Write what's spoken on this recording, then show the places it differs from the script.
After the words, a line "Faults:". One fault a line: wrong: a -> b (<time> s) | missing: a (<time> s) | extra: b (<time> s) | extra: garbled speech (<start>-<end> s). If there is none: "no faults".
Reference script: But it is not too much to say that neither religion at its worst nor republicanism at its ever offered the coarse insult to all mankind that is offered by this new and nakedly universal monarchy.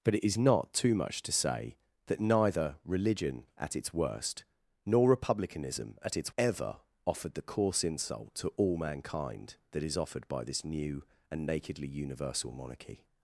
But it is not too much to say that neither religion at its worst nor republicanism at its ever offered the coarse insult to all mankind that is offered by this new and nakedly universal monarchy.
Faults:
no faults